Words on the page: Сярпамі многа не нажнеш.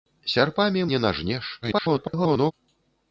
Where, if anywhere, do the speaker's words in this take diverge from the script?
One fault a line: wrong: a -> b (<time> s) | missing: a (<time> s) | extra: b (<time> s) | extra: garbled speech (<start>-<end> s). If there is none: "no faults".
missing: многа (0.8 s)
extra: garbled speech (1.6-2.5 s)